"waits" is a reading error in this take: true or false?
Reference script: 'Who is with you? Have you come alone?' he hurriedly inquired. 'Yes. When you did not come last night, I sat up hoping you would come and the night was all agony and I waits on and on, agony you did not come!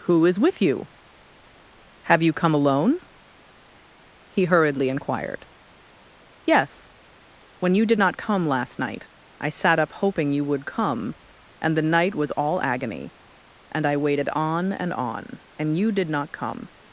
true